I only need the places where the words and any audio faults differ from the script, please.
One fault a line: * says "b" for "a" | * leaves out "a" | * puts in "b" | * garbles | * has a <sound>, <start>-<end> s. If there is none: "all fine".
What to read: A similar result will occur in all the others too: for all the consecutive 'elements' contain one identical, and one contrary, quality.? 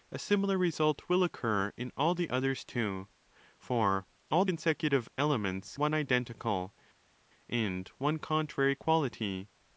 * leaves out "the"
* leaves out "contain"